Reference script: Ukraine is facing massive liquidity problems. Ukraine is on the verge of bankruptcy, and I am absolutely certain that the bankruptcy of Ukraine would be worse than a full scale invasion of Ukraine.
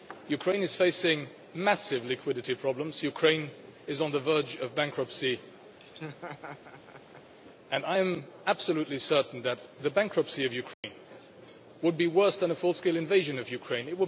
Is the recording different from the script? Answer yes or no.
no